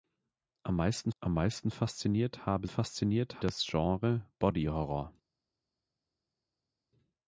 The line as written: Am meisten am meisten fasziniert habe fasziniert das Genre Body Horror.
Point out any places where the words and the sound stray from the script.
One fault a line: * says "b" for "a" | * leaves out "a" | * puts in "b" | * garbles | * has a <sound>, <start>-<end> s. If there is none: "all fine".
all fine